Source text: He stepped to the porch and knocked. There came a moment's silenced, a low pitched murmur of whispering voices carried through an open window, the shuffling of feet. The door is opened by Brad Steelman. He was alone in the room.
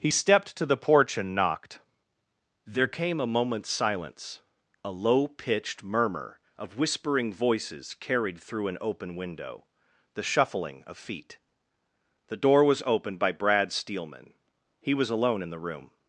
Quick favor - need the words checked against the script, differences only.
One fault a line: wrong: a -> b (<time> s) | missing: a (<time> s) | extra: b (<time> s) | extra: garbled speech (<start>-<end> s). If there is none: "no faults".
wrong: silenced -> silence (3.7 s)
wrong: is -> was (12.6 s)